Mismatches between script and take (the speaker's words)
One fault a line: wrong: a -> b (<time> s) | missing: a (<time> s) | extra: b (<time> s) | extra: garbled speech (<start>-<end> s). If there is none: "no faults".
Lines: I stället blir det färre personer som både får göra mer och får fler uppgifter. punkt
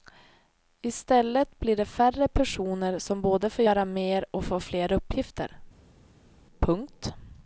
no faults